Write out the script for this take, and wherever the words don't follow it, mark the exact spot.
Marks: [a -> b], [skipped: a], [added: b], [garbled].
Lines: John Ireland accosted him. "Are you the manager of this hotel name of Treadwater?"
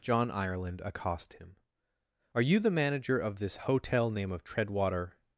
John Ireland [accosted -> accost] him. "Are you the manager of this hotel name of Treadwater?"